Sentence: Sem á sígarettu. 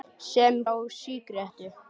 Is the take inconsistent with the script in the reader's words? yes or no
no